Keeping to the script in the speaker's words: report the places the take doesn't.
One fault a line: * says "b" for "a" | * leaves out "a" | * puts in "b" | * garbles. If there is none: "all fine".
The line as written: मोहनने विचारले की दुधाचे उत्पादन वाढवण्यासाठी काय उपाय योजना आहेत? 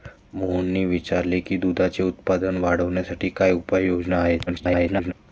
* garbles